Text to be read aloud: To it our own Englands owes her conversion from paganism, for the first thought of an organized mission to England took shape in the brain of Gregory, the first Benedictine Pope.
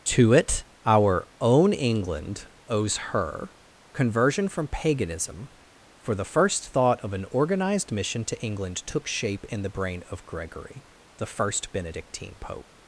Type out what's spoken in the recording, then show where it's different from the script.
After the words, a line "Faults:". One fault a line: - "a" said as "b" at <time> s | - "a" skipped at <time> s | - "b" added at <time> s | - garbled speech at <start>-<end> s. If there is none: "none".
To it our own England owes her conversion from paganism, for the first thought of an organized mission to England took shape in the brain of Gregory, the first Benedictine Pope.
Faults:
- "Englands" said as "England" at 1.7 s